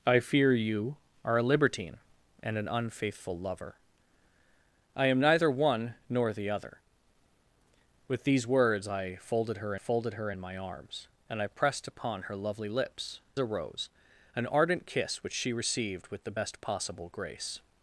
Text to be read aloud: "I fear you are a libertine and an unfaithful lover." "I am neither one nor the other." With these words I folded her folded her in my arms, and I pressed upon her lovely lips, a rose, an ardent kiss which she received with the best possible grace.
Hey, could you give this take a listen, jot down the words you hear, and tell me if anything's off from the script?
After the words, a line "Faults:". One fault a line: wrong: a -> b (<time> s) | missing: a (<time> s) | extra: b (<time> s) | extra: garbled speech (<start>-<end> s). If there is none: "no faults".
"I fear you are a libertine and an unfaithful lover." "I am neither one nor the other." With these words I folded her folded her in my arms, and I pressed upon her lovely lips, a rose, an ardent kiss which she received with the best possible grace.
Faults:
no faults